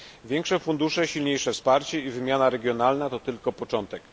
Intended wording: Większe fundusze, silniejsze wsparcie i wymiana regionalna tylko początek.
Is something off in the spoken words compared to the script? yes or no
yes